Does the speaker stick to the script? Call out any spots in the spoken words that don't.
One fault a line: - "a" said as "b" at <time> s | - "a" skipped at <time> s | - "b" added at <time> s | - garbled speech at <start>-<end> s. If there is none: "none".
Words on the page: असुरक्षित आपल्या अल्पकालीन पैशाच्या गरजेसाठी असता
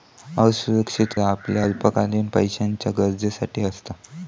none